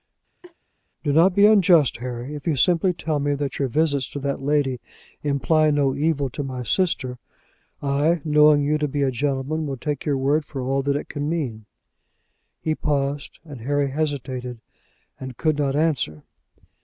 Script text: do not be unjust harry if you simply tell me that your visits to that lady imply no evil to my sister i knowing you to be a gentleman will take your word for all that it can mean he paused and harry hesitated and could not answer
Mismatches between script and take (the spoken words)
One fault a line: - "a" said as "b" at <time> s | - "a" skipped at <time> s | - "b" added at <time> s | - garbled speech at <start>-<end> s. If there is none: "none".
none